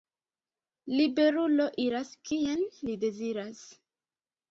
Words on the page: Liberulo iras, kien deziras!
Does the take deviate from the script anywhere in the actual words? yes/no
yes